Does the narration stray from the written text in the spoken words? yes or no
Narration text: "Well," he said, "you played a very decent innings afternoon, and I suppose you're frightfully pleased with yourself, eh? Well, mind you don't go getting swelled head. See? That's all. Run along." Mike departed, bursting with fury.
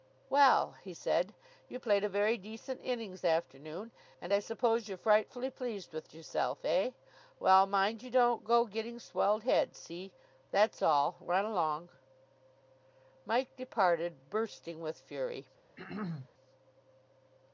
no